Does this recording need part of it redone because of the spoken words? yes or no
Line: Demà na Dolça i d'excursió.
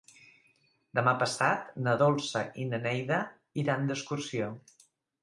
yes